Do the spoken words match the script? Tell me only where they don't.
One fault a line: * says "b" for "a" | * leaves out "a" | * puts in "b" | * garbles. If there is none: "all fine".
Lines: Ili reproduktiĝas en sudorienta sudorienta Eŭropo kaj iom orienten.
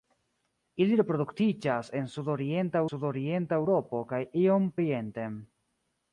all fine